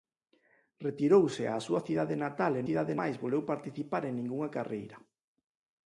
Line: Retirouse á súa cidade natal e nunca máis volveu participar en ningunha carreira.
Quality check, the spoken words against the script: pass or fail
fail